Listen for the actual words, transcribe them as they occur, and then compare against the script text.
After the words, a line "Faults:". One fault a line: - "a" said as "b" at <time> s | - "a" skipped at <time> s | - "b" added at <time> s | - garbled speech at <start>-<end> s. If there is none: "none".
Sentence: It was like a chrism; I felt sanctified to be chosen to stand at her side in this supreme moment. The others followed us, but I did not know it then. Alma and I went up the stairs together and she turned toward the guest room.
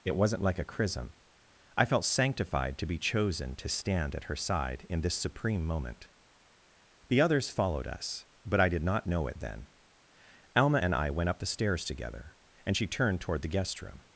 It wasn't like a chrism; I felt sanctified to be chosen to stand at her side in this supreme moment. The others followed us, but I did not know it then. Alma and I went up the stairs together and she turned toward the guest room.
Faults:
- "was" said as "wasn't" at 0.1 s